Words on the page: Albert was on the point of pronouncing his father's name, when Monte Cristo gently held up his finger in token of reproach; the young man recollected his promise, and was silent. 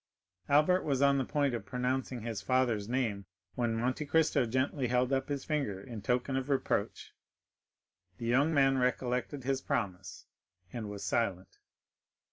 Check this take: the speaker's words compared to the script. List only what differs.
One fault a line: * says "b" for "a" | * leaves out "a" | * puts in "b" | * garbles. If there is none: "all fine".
all fine